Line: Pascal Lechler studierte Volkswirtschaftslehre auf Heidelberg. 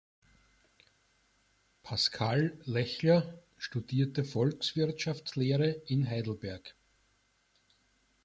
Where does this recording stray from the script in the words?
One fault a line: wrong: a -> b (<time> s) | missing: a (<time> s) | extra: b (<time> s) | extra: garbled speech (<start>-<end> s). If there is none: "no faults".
wrong: auf -> in (5.8 s)